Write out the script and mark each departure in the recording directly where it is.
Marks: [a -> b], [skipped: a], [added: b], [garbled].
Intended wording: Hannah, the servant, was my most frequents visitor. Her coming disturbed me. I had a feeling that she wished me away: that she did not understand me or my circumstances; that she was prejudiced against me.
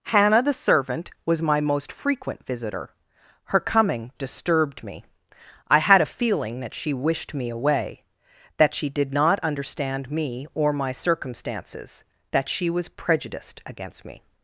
Hannah, the servant, was my most [frequents -> frequent] visitor. Her coming disturbed me. I had a feeling that she wished me away: that she did not understand me or my circumstances; that she was prejudiced against me.